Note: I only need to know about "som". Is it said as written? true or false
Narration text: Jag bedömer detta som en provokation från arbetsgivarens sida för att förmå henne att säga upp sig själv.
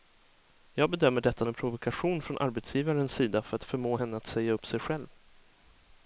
false